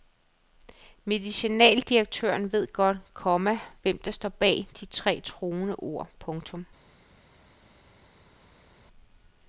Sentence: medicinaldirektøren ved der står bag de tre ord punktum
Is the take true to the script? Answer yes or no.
no